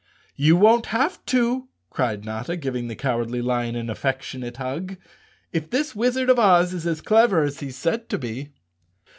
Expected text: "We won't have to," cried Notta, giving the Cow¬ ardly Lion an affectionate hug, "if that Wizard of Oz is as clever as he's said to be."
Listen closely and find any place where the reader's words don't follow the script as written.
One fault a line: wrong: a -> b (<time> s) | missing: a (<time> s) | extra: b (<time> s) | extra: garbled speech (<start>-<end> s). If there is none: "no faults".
wrong: We -> You (0.3 s)
wrong: that -> this (5.7 s)